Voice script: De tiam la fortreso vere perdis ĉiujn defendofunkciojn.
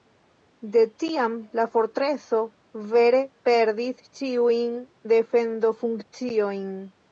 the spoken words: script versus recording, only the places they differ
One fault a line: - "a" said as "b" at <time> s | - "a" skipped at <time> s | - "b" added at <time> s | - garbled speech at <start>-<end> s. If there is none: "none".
none